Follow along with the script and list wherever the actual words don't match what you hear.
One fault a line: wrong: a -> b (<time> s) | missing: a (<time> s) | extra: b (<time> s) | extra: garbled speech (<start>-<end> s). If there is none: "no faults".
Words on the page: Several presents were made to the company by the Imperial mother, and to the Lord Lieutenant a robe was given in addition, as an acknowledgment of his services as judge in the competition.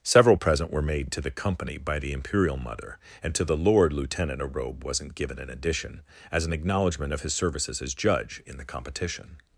wrong: presents -> present (0.3 s)
wrong: was -> wasn't (4.8 s)